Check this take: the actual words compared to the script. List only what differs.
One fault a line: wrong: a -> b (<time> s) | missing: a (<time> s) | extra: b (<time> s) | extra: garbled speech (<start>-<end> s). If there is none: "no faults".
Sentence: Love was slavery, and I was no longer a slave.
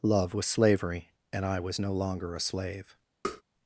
no faults